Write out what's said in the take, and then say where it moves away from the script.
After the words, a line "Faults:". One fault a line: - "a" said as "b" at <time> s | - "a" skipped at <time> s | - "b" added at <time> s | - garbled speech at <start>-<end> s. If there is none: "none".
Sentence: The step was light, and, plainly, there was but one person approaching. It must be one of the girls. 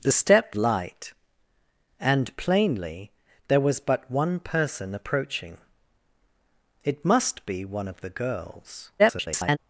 The step light, and, plainly, there was but one person approaching. It must be one of the girls. [garbled]
Faults:
- "was" skipped at 0.5 s
- garbled speech at 9.0-9.6 s